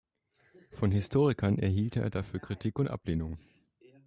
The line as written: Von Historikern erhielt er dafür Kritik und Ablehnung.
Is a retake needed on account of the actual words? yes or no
no